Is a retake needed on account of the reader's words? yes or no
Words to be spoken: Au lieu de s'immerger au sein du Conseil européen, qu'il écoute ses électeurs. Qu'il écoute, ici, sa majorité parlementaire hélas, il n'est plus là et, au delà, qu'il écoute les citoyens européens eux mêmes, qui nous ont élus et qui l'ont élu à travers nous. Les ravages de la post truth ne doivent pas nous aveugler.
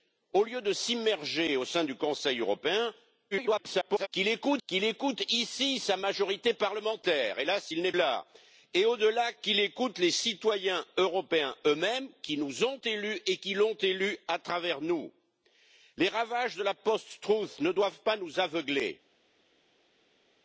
yes